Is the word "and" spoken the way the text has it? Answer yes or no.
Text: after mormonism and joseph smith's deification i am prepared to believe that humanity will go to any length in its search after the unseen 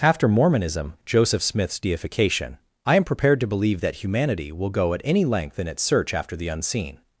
no